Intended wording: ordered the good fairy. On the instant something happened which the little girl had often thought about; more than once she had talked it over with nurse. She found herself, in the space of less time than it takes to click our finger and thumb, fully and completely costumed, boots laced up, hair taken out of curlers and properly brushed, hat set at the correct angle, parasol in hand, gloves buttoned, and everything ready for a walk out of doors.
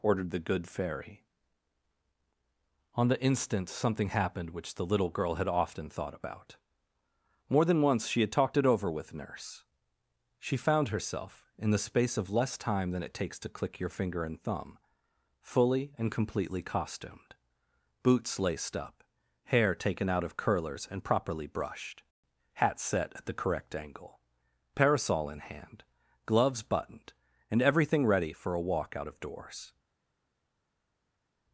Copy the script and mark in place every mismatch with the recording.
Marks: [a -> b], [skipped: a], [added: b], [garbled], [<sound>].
ordered the good fairy. On the instant something happened which the little girl had often thought about; more than once she had talked it over with nurse. She found herself, in the space of less time than it takes to click [our -> your] finger and thumb, fully and completely costumed, boots laced up, hair taken out of curlers and properly brushed, hat set at the correct angle, parasol in hand, gloves buttoned, and everything ready for a walk out of doors.